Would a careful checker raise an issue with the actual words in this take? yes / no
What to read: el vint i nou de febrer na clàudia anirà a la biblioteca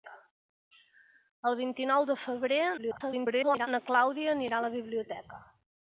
yes